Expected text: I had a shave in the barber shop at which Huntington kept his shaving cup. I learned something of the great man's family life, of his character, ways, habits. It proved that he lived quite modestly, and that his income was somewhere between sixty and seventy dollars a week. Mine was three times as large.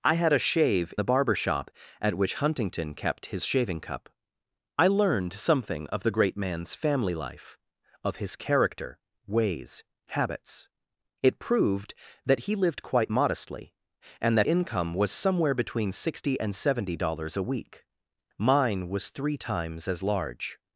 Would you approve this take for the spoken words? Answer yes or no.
no